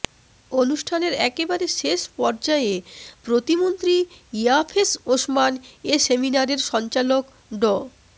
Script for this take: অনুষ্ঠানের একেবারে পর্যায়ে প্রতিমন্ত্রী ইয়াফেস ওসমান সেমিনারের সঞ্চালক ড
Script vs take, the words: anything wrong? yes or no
yes